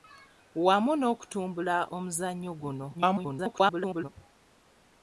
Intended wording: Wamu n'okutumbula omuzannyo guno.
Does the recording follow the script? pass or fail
fail